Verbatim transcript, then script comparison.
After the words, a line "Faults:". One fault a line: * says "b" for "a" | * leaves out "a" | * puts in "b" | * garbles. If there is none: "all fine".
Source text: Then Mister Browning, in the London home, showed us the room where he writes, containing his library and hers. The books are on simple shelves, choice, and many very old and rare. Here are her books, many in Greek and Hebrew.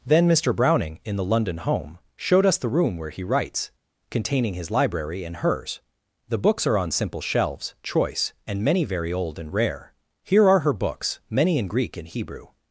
Then Mister Browning, in the London home, showed us the room where he writes, containing his library and hers. The books are on simple shelves, choice, and many very old and rare. Here are her books, many in Greek and Hebrew.
Faults:
all fine